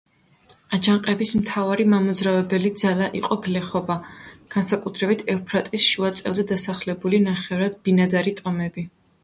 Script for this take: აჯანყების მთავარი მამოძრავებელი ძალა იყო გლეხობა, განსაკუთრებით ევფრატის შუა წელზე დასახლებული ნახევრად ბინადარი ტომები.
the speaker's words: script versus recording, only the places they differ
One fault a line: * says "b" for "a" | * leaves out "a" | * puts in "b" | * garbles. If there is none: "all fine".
all fine